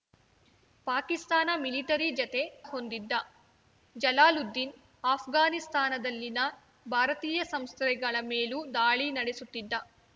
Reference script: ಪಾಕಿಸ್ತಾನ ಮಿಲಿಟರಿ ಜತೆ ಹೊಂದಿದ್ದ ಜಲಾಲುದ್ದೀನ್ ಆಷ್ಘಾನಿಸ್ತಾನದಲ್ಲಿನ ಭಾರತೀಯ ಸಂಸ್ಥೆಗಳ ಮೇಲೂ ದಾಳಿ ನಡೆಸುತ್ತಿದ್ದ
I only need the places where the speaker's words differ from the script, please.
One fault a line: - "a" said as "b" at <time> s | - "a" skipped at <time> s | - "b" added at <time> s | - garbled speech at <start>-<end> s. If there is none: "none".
none